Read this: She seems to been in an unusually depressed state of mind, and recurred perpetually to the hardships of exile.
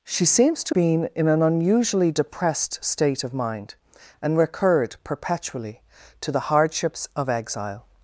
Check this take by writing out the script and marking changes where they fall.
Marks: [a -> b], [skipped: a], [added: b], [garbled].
She seems to been in an unusually depressed state of mind, and recurred perpetually to the hardships of exile.